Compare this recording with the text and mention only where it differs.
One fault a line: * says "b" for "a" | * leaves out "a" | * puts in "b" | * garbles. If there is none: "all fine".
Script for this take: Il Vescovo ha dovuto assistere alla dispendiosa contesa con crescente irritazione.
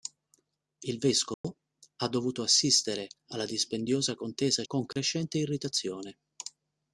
all fine